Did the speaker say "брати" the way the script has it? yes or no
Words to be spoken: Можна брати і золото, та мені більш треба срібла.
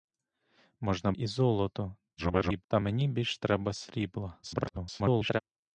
no